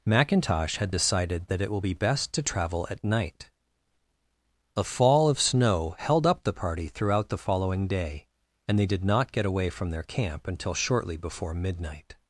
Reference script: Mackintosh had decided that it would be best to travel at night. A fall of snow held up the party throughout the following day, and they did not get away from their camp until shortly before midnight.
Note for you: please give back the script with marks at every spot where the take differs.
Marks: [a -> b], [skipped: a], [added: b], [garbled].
Mackintosh had decided that it [would -> will] be best to travel at night. A fall of snow held up the party throughout the following day, and they did not get away from their camp until shortly before midnight.